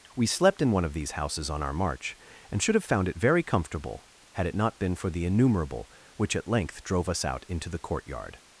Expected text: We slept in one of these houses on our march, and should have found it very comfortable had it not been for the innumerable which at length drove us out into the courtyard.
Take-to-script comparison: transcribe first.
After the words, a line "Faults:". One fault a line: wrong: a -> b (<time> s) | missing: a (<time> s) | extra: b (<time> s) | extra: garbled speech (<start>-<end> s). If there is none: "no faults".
We slept in one of these houses on our march, and should have found it very comfortable had it not been for the innumerable which at length drove us out into the courtyard.
Faults:
no faults